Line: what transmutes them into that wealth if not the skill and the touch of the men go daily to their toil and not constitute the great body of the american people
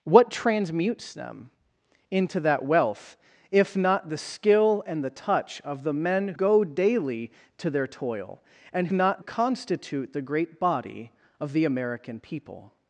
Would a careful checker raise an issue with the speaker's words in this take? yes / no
no